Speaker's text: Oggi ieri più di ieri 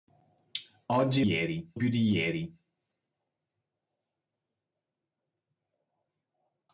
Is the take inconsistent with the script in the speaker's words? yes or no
no